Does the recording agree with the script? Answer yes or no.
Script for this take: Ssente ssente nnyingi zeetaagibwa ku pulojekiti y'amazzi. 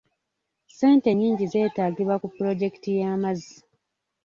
no